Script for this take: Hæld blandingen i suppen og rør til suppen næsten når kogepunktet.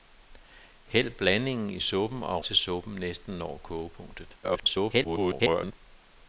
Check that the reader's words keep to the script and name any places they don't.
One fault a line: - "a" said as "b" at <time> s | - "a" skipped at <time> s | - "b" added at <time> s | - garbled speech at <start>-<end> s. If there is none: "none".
- "rør" skipped at 2.4 s
- garbled speech at 4.4-5.8 s